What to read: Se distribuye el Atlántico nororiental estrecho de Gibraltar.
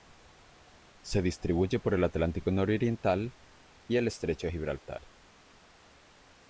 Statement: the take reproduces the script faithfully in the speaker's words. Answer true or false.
false